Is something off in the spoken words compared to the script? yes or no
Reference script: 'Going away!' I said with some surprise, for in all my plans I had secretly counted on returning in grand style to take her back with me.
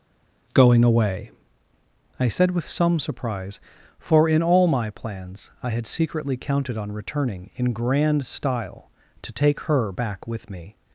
no